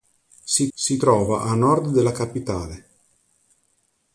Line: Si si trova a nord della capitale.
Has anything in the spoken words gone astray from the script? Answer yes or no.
no